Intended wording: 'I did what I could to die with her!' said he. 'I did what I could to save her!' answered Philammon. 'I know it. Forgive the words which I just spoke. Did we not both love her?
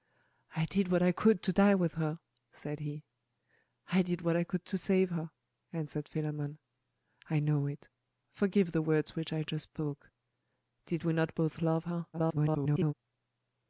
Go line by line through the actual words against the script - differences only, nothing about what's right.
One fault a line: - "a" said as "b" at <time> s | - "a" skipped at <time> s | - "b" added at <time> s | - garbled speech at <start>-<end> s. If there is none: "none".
- garbled speech at 12.1-12.9 s